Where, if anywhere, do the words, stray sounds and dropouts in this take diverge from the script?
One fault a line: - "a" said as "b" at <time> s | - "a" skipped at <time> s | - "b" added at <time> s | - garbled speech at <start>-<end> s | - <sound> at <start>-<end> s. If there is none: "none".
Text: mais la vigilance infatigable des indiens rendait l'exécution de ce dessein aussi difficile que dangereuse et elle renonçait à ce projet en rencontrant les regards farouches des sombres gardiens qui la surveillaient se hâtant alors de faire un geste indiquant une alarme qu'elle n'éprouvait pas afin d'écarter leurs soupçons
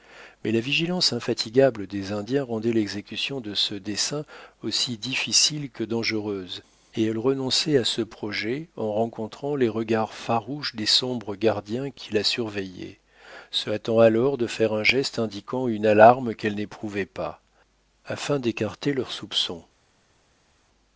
none